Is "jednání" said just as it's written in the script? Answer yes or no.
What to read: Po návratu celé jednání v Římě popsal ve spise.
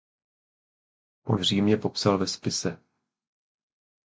no